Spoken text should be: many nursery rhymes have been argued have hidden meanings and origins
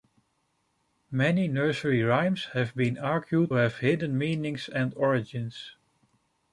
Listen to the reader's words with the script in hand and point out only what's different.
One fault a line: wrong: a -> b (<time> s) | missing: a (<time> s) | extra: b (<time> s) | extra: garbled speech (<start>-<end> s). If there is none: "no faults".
no faults